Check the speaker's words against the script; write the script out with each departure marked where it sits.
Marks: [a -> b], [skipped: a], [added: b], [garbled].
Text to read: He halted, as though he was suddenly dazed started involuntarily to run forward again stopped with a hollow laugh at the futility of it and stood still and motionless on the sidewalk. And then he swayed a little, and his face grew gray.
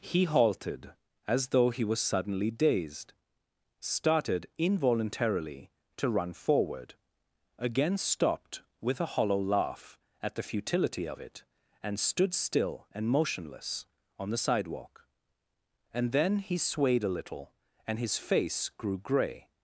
He halted, as though he was suddenly dazed started involuntarily to run forward again stopped with a hollow laugh at the futility of it and stood still and motionless on the sidewalk. And then he swayed a little, and his face grew gray.